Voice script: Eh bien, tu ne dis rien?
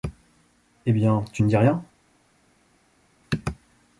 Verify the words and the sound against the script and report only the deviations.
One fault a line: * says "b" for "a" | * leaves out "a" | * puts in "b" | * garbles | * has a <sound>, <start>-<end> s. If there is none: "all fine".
all fine